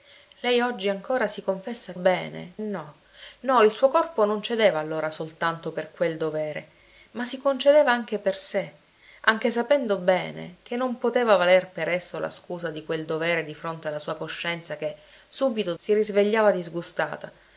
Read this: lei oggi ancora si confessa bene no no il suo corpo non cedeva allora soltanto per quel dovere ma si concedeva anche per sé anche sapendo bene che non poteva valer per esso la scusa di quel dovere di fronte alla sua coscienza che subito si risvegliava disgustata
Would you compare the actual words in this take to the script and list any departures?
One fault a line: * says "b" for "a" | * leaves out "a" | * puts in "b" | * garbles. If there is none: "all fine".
all fine